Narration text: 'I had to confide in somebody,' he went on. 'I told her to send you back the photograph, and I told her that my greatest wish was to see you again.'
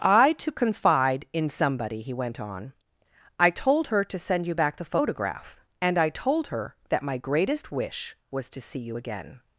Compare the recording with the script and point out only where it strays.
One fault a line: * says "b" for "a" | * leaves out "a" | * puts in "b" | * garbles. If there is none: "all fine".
* leaves out "had"